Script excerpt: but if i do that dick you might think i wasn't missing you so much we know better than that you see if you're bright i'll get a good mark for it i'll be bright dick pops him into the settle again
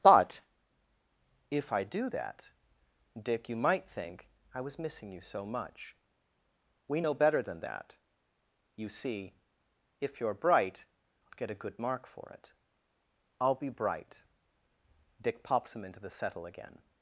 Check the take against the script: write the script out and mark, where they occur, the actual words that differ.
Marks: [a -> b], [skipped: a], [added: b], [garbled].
but if i do that dick you might think i [wasn't -> was] missing you so much we know better than that you see if you're bright i'll get a good mark for it i'll be bright dick pops him into the settle again